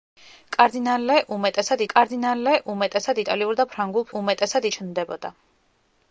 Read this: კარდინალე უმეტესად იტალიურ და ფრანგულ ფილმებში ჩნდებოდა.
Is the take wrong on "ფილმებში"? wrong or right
wrong